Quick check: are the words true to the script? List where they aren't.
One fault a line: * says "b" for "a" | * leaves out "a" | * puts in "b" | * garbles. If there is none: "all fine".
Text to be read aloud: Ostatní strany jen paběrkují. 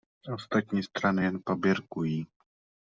all fine